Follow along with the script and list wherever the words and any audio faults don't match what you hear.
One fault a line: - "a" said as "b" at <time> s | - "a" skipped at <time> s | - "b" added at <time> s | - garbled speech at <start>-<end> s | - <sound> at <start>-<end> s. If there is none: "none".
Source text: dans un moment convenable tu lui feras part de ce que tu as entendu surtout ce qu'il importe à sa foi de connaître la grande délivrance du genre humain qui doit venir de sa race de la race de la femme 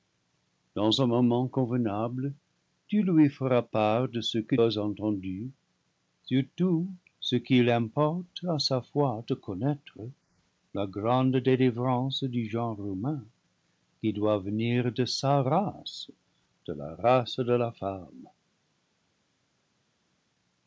- "tu" skipped at 4.5 s